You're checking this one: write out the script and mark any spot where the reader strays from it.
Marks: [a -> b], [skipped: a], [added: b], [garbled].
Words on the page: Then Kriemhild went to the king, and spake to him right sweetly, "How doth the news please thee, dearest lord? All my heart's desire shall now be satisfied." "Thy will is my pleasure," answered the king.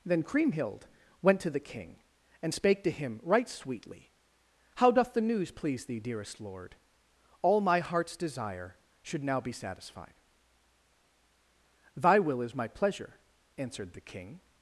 Then Kriemhild went to the king, and spake to him right sweetly, "How doth the news please thee, dearest lord? All my heart's desire [shall -> should] now be satisfied." "Thy will is my pleasure," answered the king.